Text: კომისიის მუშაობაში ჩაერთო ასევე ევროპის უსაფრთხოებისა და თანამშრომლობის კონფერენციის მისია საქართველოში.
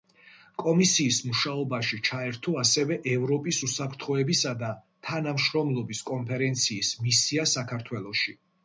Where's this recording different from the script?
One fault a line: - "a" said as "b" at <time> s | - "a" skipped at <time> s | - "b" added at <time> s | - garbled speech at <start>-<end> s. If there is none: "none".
none